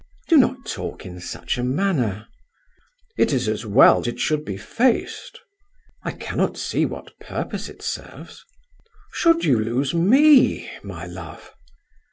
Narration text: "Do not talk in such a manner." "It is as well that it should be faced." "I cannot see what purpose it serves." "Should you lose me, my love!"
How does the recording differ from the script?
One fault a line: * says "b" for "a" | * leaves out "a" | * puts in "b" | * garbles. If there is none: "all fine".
* leaves out "that"